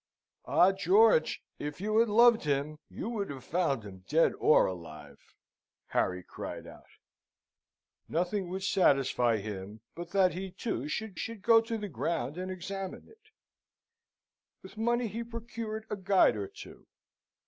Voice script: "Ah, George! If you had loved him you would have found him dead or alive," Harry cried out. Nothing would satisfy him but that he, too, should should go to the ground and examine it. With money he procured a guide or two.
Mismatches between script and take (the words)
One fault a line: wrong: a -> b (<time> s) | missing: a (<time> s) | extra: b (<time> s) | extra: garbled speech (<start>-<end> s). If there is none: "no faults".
no faults